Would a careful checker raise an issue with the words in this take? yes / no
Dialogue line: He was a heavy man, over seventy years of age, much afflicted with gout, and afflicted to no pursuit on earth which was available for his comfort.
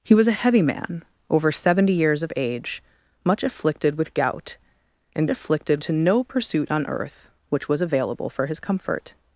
no